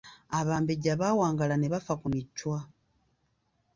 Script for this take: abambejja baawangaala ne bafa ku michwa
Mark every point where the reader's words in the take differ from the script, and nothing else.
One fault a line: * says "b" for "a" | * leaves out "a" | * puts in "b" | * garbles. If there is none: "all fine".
all fine